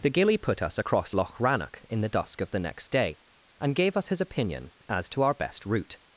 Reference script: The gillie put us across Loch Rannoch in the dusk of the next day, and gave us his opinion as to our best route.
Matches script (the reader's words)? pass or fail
pass